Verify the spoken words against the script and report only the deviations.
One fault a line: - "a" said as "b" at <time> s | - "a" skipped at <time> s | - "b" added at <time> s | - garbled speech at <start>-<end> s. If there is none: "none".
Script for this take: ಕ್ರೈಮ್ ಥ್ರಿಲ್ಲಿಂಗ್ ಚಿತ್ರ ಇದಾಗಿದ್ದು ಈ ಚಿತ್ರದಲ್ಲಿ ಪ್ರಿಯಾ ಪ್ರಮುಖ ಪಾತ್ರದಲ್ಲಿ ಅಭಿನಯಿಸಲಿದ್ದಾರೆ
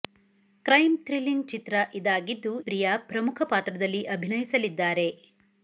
- "ಈ ಚಿತ್ರದಲ್ಲಿ" skipped at 2.5 s